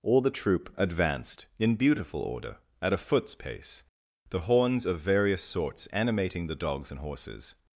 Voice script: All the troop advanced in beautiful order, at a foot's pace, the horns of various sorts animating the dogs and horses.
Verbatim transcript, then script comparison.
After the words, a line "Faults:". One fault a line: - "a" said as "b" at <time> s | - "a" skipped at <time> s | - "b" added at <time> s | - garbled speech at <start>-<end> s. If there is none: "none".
All the troop advanced in beautiful order, at a foot's pace, the horns of various sorts animating the dogs and horses.
Faults:
none